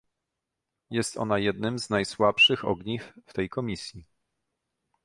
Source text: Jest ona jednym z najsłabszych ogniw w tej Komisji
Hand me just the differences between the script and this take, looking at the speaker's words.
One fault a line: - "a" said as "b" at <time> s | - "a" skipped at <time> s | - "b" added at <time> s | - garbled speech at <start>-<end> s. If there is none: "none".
none